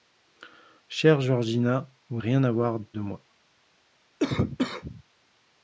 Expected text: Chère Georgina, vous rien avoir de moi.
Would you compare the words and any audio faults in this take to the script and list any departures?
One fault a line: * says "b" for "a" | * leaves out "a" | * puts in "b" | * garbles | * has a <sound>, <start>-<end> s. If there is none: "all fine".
* has a cough, 4.2-5.0 s